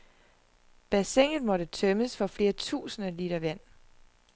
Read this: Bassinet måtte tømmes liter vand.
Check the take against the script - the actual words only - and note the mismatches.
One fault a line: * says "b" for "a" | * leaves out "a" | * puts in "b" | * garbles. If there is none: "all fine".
* puts in "for flere tusinde"